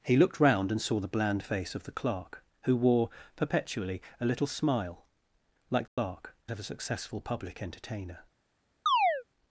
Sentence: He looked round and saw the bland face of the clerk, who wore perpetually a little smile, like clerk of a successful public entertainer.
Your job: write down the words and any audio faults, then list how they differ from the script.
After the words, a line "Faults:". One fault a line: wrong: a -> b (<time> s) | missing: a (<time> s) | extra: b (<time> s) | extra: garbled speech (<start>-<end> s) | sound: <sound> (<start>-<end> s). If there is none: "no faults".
He looked round and saw the bland face of the clerk, who wore perpetually a little smile, like clerk of a successful public entertainer.
Faults:
sound: dropout (5.9-6.0 s)
sound: chirp (8.9-9.2 s)